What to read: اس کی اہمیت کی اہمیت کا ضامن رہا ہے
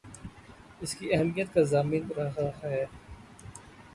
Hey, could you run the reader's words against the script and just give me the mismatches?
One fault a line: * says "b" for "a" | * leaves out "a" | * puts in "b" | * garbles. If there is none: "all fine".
* leaves out "کی اہمیت"